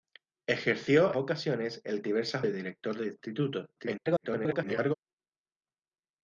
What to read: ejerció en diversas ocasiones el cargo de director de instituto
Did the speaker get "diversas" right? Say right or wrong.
wrong